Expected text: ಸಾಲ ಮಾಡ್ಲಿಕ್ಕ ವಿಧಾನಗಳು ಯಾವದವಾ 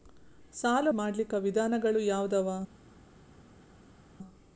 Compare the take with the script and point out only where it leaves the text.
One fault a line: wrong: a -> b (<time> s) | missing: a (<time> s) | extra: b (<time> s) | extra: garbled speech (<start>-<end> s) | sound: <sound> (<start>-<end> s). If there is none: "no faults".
no faults